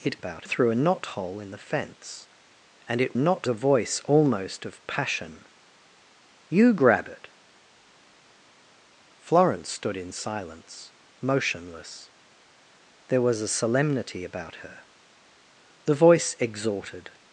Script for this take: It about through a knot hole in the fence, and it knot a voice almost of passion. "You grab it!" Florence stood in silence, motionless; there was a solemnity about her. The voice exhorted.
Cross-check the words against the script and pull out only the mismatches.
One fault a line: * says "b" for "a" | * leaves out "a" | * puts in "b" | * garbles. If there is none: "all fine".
all fine